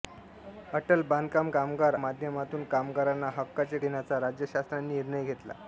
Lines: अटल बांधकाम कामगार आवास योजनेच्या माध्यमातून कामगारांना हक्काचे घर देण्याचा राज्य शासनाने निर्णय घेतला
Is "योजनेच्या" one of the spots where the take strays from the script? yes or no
yes